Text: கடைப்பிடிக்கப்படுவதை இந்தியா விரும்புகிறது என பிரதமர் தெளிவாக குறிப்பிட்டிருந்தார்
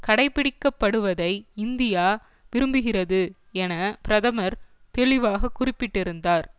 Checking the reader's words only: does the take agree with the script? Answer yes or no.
yes